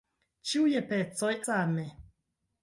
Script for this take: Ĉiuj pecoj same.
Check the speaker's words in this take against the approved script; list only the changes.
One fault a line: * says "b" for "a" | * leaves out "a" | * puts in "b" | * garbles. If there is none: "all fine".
all fine